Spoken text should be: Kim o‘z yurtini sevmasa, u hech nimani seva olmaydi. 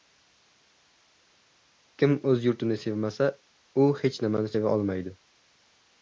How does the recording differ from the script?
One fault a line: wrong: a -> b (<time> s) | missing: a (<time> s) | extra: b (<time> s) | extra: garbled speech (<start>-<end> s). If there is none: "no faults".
no faults